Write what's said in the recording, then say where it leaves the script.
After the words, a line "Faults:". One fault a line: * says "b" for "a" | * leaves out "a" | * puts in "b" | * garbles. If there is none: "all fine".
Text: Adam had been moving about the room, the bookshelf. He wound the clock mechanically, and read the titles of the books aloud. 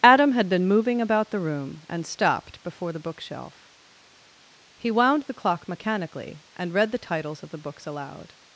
Adam had been moving about the room, and stopped before the bookshelf. He wound the clock mechanically, and read the titles of the books aloud.
Faults:
* puts in "and stopped before"